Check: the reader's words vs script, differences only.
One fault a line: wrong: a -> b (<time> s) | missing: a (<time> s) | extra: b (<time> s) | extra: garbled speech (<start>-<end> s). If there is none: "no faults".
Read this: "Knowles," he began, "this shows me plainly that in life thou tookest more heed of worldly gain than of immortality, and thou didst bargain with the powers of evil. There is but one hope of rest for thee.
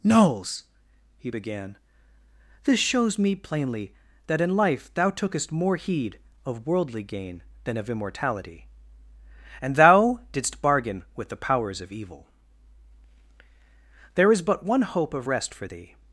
no faults